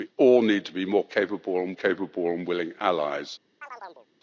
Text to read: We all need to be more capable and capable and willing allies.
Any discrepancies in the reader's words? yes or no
no